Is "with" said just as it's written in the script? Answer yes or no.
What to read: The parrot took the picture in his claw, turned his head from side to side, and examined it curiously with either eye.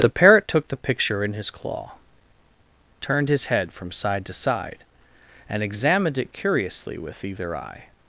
yes